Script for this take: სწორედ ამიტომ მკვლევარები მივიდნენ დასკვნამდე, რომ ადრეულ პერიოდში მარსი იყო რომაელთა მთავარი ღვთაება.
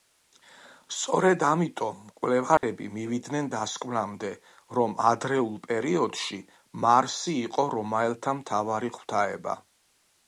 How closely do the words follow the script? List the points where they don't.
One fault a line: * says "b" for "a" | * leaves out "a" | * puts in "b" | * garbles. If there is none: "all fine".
all fine